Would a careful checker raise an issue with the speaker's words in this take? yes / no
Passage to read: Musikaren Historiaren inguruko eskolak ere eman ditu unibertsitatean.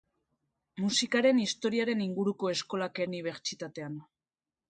yes